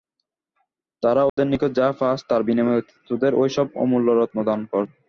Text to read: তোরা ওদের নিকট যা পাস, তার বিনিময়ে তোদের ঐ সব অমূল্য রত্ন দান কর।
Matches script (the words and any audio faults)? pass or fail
fail